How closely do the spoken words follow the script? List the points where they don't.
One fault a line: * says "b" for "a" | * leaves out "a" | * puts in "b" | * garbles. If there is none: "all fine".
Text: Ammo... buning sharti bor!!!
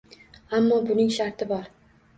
all fine